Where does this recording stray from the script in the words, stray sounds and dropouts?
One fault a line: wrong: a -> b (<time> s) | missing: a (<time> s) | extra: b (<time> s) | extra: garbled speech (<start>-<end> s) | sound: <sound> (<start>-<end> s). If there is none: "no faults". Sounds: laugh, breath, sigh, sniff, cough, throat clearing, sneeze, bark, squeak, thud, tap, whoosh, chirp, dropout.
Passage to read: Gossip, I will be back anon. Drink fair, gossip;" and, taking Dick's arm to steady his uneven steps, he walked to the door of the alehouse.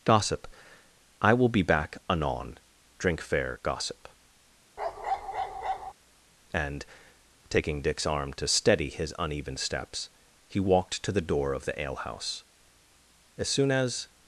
sound: bark (4.8-5.9 s)
extra: As soon as (13.4 s)